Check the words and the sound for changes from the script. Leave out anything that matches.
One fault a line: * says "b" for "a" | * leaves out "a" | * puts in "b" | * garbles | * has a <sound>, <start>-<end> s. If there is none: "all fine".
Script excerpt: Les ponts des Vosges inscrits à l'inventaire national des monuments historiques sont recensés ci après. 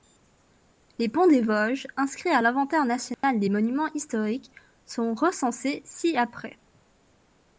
* has a dropout, 3.1-3.2 s